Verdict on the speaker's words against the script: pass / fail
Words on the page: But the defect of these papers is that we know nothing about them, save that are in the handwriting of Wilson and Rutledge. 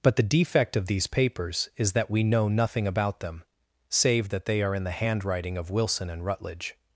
fail